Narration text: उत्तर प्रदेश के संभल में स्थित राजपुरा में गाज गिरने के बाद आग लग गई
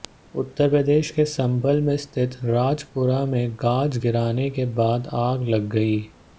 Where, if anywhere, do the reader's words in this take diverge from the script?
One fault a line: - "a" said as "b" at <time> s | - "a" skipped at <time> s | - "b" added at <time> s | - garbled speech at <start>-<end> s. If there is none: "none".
none